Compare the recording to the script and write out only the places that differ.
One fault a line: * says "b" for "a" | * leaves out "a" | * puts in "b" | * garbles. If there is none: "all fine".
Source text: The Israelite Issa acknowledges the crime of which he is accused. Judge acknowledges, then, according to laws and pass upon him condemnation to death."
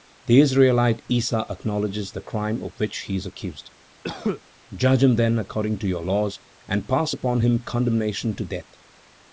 * says "him" for "acknowledges"
* puts in "your"